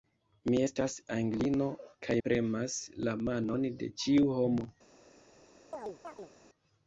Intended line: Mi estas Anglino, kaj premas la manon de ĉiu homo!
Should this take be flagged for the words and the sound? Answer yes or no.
yes